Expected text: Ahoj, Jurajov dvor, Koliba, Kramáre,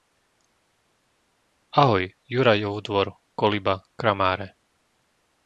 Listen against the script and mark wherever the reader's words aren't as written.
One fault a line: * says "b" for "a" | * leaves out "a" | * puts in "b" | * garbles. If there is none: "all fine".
all fine